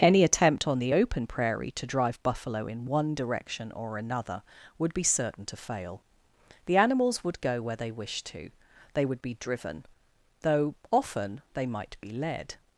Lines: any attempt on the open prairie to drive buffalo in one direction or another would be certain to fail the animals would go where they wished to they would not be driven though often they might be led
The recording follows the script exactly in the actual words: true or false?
false